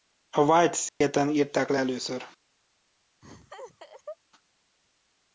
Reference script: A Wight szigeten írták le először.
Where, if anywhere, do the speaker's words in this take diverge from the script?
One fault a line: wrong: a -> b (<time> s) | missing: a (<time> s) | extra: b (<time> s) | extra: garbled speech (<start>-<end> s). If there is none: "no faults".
no faults